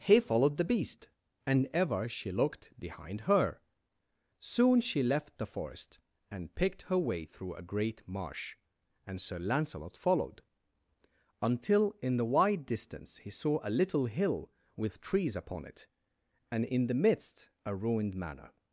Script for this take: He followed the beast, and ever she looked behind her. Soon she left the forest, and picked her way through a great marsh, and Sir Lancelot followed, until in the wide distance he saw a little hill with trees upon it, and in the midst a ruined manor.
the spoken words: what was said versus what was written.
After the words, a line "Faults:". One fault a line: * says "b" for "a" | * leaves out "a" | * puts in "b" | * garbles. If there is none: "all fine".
He followed the beast, and ever she looked behind her. Soon she left the forest, and picked her way through a great marsh, and Sir Lancelot followed, until in the wide distance he saw a little hill with trees upon it, and in the midst a ruined manor.
Faults:
all fine